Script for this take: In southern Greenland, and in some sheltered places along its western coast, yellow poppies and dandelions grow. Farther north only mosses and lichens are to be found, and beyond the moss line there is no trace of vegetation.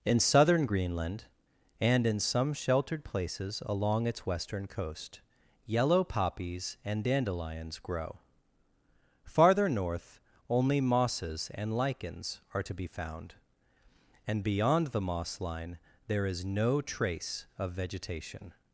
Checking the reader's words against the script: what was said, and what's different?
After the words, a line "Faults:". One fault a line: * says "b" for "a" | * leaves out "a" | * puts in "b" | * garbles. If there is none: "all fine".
In southern Greenland, and in some sheltered places along its western coast, yellow poppies and dandelions grow. Farther north only mosses and lichens are to be found, and beyond the moss line there is no trace of vegetation.
Faults:
all fine